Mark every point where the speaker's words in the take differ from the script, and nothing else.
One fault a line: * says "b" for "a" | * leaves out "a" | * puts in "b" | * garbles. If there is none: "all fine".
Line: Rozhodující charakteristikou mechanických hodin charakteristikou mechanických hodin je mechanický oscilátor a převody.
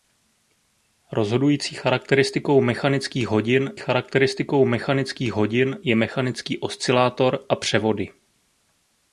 all fine